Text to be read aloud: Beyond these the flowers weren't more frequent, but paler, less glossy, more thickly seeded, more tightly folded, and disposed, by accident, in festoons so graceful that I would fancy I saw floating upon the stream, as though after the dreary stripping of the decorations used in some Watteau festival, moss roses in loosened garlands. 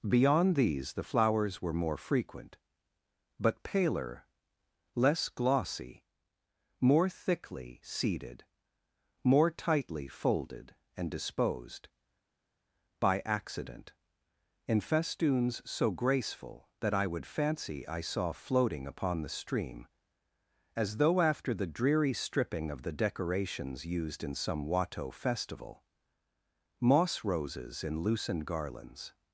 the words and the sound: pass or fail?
fail